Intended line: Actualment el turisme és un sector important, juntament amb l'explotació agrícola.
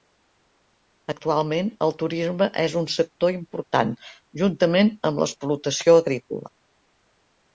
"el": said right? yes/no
yes